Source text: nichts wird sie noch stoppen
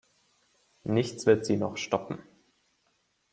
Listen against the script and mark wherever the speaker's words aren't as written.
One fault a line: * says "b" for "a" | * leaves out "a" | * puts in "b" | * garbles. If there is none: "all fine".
all fine